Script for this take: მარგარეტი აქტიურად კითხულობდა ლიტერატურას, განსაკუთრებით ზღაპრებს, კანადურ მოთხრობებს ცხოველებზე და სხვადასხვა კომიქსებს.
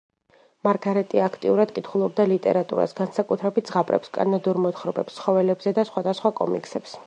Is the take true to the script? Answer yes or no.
yes